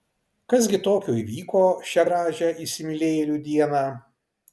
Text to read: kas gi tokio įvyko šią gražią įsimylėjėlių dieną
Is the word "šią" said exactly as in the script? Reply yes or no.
yes